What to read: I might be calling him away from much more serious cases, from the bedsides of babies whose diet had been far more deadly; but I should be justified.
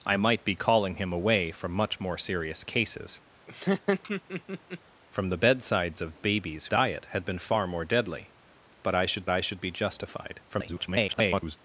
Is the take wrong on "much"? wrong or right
right